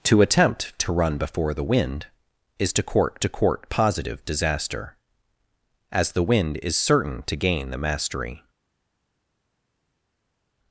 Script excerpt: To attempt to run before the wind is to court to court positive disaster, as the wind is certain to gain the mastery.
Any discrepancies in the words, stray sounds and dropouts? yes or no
no